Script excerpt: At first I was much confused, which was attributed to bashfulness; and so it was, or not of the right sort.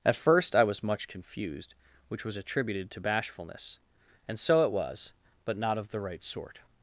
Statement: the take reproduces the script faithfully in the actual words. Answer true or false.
false